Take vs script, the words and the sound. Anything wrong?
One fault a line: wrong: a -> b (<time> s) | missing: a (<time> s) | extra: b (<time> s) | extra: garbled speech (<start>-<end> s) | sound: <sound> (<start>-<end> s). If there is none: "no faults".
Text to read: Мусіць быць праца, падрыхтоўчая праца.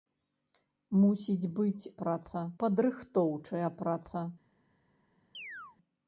sound: chirp (5.3-5.8 s)